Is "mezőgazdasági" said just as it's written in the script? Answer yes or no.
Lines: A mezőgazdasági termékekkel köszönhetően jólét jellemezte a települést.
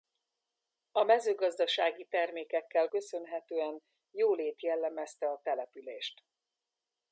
yes